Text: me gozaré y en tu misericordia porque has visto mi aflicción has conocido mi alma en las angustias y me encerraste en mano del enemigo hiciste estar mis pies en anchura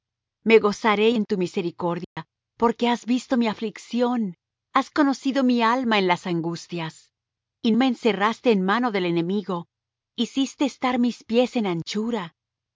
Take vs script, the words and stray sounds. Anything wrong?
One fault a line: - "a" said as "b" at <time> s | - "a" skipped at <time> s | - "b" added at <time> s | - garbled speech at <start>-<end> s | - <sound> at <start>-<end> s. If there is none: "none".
- dropout at 2.0-2.2 s